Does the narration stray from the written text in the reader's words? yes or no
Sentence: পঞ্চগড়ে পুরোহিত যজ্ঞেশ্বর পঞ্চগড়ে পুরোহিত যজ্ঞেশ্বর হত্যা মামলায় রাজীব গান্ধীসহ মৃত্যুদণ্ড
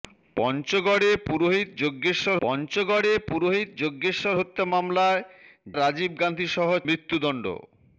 no